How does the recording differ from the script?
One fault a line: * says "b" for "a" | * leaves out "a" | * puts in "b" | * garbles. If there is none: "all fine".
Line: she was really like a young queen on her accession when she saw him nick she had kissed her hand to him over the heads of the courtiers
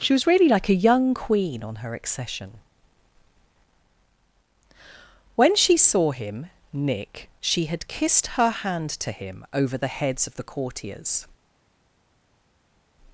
all fine